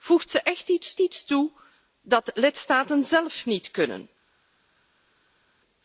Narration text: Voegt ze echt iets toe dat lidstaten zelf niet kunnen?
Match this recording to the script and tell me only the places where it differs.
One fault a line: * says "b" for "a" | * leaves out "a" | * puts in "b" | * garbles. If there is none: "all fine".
* puts in "iets"